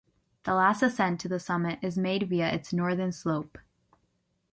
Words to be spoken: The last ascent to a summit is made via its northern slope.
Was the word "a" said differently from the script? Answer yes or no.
yes